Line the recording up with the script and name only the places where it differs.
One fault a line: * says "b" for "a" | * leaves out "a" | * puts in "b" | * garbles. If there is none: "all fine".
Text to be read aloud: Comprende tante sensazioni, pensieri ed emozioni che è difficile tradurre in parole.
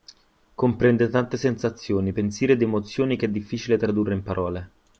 all fine